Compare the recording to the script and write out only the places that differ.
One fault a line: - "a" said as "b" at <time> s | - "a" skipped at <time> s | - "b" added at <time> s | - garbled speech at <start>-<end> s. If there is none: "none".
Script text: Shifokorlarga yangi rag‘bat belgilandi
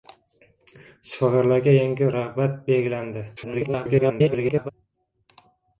- garbled speech at 3.4-4.7 s